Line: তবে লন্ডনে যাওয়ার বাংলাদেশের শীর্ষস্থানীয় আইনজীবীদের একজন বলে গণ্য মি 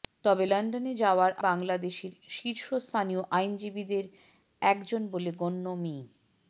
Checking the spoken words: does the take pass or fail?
pass